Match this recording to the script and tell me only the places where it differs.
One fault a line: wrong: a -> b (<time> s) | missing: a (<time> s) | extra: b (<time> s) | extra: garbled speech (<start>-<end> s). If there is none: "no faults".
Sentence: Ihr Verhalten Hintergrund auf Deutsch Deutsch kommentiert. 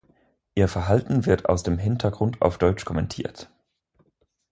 extra: wird aus dem (1.3 s)
missing: Deutsch (2.9 s)